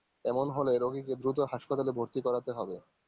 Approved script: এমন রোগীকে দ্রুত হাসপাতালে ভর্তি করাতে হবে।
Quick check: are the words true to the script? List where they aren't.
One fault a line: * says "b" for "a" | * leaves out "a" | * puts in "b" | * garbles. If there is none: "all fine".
* puts in "হলে"